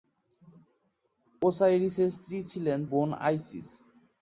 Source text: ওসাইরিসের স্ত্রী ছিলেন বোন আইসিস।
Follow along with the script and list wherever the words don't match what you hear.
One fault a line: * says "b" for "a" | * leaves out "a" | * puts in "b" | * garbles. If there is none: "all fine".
all fine